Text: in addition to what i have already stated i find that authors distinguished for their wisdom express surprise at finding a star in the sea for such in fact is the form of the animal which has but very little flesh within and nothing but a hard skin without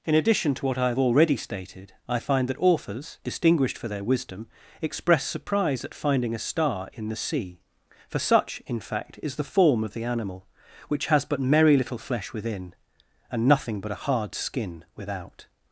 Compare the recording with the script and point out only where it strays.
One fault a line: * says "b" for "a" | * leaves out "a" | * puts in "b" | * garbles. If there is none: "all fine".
* says "merry" for "very"